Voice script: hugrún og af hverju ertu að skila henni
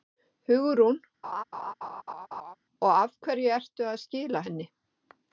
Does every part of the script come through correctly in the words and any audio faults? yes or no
no